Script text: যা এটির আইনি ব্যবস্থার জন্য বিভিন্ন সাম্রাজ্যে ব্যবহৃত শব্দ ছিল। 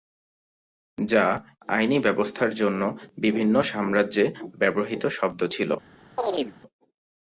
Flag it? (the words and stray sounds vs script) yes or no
yes